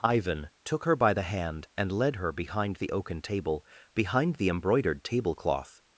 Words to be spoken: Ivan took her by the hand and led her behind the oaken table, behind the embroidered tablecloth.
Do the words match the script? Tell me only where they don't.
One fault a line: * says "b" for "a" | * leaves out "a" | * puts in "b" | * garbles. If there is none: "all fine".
all fine